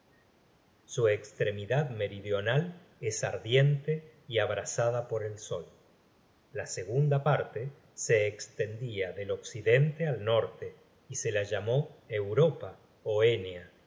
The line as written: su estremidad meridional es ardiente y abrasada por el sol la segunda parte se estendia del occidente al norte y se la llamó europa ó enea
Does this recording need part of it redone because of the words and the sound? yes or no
no